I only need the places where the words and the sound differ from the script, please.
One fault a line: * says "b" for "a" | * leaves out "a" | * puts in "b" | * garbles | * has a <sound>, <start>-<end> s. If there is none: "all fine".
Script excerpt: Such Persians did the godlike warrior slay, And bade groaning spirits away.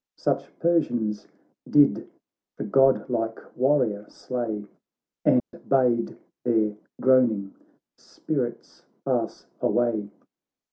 * has a dropout, 5.4-5.5 s
* puts in "their"
* puts in "pass"